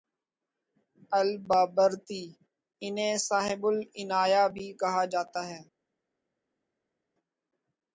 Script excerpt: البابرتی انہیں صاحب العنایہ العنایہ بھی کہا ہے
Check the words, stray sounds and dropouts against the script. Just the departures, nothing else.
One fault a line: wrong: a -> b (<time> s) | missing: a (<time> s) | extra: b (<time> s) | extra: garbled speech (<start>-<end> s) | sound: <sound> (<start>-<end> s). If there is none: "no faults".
missing: العنایہ (4.4 s)
extra: جاتا (5.1 s)